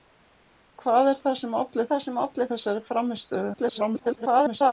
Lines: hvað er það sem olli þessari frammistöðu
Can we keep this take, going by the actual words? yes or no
no